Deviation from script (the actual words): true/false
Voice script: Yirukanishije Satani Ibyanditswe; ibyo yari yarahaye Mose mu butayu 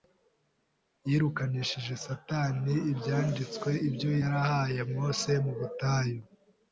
true